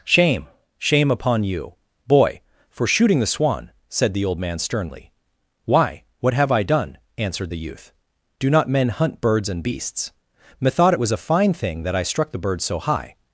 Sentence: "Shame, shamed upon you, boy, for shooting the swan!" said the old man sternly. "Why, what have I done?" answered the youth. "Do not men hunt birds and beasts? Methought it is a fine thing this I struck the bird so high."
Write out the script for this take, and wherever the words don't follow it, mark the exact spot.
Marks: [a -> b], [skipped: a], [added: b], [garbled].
"Shame, [shamed -> shame] upon you, boy, for shooting the swan!" said the old man sternly. "Why, what have I done?" answered the youth. "Do not men hunt birds and beasts? Methought it [is -> was] a fine thing [this -> that] I struck the bird so high."